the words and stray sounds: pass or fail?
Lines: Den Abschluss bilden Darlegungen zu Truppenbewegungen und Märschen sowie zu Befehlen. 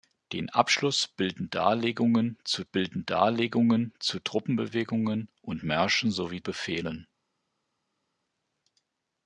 fail